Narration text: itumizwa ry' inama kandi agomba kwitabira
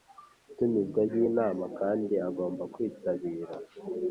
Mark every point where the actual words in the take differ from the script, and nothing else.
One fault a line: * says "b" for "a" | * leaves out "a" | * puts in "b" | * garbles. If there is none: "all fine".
all fine